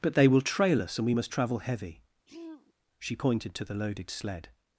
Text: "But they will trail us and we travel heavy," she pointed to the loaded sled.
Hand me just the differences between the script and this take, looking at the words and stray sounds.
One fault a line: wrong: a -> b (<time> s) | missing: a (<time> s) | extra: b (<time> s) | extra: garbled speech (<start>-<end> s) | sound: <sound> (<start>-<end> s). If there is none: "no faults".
extra: must (1.1 s)
sound: throat clearing (2.3-2.7 s)